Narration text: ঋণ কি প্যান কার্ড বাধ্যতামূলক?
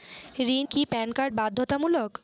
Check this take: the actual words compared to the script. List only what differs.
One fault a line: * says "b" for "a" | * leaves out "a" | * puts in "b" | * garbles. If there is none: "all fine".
all fine